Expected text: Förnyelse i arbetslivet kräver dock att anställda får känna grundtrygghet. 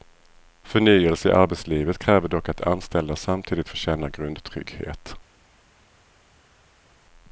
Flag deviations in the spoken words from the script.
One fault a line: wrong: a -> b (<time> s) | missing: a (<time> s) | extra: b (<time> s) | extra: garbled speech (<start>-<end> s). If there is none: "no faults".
extra: samtidigt (3.1 s)